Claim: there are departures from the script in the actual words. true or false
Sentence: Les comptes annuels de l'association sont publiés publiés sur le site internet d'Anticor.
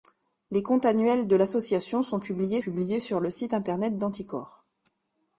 false